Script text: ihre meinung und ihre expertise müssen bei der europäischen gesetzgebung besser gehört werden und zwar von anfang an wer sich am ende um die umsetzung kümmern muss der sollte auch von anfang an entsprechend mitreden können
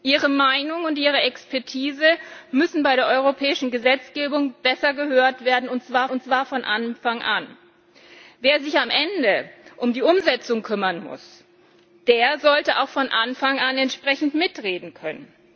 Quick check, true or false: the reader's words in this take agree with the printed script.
false